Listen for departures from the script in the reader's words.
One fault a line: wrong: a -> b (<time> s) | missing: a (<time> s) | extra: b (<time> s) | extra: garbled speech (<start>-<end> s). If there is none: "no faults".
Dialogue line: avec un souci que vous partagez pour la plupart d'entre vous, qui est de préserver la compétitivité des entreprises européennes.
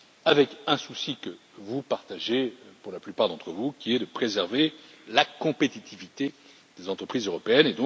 no faults